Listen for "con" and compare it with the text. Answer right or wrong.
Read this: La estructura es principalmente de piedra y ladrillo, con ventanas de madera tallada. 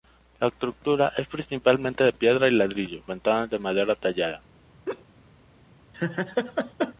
wrong